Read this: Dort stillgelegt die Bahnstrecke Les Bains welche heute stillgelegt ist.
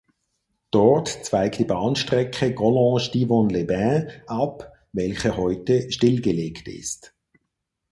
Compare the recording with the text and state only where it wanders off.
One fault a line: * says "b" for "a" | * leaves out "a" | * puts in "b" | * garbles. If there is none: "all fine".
* says "zweigt" for "stillgelegt"
* puts in "Collonges Divonne"
* puts in "ab"